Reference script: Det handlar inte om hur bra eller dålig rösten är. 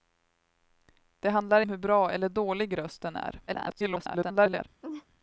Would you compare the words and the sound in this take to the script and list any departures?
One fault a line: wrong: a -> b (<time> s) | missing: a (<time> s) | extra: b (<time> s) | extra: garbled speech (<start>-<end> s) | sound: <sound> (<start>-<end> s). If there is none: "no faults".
missing: inte (1.6 s)
extra: garbled speech (3.5-4.7 s)
sound: laugh (4.8-5.1 s)